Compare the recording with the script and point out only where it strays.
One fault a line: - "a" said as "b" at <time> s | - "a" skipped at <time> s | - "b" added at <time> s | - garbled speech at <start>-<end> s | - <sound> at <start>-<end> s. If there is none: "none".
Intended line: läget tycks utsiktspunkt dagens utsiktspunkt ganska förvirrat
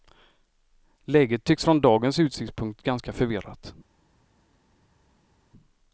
- "utsiktspunkt" said as "från" at 1.6 s